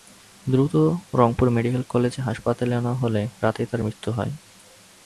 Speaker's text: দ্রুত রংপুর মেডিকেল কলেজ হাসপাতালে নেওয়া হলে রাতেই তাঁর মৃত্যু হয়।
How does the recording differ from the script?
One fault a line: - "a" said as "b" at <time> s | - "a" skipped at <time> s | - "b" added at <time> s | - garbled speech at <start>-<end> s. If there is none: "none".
none